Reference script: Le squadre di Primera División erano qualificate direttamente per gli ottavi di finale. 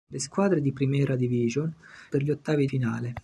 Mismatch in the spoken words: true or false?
true